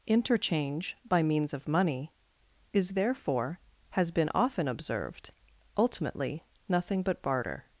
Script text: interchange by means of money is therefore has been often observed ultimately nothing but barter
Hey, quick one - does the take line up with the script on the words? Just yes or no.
yes